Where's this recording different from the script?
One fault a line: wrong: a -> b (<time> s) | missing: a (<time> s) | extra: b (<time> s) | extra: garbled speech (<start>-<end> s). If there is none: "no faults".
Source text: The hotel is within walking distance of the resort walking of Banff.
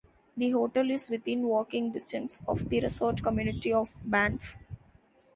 wrong: walking -> community (3.2 s)